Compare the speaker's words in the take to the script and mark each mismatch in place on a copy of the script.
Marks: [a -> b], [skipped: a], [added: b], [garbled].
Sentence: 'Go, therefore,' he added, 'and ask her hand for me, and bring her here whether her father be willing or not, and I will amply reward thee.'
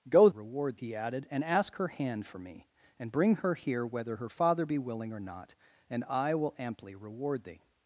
'Go, [therefore,' -> reward] he added, 'and ask her hand for me, and bring her here whether her father be willing or not, and I will amply reward thee.'